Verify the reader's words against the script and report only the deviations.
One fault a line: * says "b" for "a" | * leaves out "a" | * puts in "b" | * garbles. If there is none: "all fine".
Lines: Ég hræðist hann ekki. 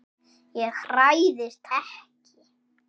* leaves out "hann"